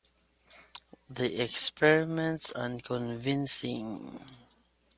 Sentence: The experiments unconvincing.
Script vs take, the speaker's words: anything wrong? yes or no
no